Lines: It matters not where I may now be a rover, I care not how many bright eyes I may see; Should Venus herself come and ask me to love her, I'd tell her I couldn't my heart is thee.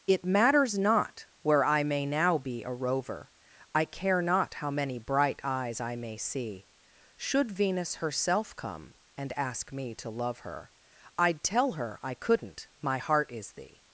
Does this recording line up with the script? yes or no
yes